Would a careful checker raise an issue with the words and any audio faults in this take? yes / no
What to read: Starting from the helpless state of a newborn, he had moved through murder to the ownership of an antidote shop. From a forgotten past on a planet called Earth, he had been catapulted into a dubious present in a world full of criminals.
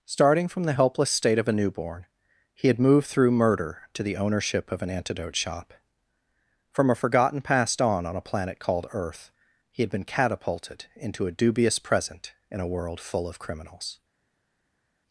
yes